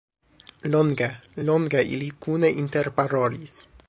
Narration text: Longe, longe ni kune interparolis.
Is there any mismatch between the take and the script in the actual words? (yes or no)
yes